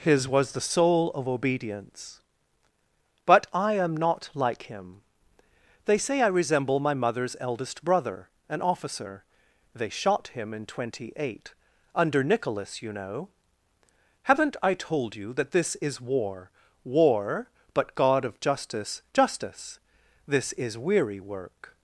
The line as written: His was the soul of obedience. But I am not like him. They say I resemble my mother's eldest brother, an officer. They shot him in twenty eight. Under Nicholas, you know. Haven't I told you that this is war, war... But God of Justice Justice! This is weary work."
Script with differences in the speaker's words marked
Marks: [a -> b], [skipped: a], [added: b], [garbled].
His was the soul of obedience. But I am not like him. They say I resemble my mother's eldest brother, an officer. They shot him in twenty eight. Under Nicholas, you know. Haven't I told you that this is war, war... But God of Justice Justice! This is weary work."